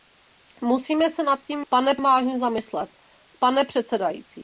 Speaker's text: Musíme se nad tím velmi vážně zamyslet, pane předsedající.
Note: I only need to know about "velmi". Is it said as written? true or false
false